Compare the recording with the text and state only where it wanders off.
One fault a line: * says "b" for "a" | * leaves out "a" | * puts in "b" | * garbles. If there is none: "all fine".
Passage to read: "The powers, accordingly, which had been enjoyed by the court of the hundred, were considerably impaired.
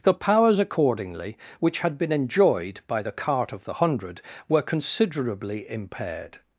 * says "cart" for "court"